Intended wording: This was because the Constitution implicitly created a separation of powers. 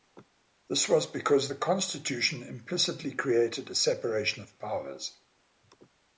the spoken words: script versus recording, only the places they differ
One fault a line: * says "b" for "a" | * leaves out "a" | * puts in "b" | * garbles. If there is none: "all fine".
all fine